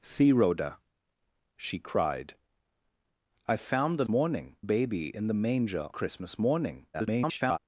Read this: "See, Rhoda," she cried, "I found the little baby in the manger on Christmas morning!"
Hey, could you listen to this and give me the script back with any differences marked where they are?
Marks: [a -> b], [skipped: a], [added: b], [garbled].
"See, Rhoda," she cried, "I found the [little -> morning] baby in the manger [skipped: on] Christmas morning!" [garbled]